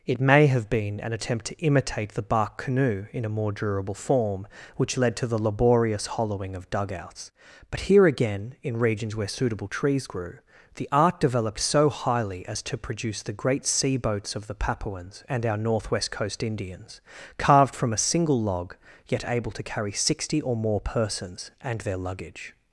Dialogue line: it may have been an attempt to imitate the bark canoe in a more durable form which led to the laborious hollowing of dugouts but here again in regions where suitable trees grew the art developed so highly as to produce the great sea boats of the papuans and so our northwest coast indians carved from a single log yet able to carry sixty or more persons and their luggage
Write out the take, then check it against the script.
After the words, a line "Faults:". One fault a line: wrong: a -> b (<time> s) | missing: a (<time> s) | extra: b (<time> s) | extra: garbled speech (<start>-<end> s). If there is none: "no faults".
it may have been an attempt to imitate the bark canoe in a more durable form which led to the laborious hollowing of dugouts but here again in regions where suitable trees grew the art developed so highly as to produce the great sea boats of the papuans and our northwest coast indians carved from a single log yet able to carry sixty or more persons and their luggage
Faults:
missing: so (15.4 s)